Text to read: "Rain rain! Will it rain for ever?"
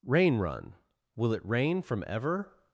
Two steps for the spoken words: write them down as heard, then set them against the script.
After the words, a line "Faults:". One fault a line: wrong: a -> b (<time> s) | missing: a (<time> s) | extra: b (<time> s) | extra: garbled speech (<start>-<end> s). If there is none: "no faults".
"Rain run! Will it rain from ever?"
Faults:
wrong: rain -> run (0.4 s)
wrong: for -> from (1.8 s)